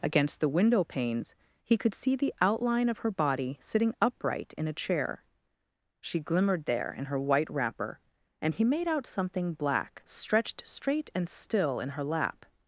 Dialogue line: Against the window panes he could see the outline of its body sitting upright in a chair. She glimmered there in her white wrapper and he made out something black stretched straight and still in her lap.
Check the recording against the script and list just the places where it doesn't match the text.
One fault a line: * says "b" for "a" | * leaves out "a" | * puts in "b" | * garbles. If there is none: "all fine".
* says "her" for "its"